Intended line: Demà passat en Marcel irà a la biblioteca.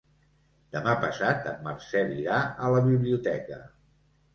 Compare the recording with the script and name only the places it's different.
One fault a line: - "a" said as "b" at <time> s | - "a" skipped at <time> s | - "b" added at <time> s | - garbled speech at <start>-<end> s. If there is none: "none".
none